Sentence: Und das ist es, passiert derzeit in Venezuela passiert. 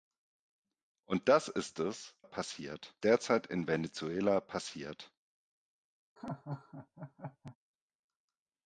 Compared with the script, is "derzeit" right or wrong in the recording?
right